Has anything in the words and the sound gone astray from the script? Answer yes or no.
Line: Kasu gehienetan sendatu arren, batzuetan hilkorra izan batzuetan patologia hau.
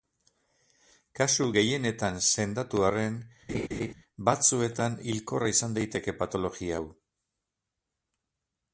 yes